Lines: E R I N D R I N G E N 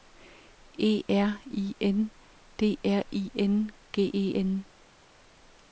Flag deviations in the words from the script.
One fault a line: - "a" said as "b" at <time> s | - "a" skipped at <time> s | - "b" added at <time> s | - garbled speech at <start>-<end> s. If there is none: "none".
none